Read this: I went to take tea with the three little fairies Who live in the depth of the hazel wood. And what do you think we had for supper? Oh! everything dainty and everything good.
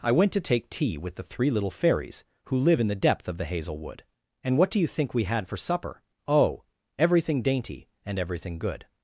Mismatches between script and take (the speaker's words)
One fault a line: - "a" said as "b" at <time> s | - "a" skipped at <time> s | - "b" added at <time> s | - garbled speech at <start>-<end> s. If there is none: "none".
none